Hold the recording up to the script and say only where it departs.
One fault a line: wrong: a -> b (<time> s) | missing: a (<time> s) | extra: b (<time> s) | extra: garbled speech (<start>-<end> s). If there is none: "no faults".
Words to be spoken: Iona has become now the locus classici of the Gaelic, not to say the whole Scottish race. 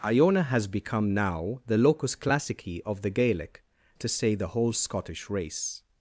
missing: not (3.6 s)